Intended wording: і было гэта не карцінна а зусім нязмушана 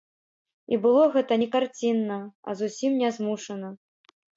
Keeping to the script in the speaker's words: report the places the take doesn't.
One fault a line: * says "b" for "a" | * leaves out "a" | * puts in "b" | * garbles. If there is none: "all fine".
all fine